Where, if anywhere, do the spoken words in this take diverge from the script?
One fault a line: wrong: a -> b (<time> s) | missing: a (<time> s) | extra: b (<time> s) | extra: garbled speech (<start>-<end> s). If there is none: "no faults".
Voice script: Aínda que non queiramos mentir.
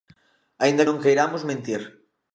missing: que (0.9 s)